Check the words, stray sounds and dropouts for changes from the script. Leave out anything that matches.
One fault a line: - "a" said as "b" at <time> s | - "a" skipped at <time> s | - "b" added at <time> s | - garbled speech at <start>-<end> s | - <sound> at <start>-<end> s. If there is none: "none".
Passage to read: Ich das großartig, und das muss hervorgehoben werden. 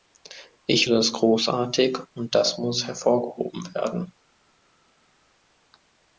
none